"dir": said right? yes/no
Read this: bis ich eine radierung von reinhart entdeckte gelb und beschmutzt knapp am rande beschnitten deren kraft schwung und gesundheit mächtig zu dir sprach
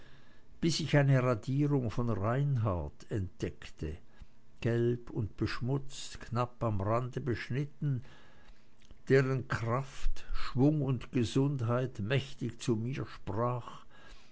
no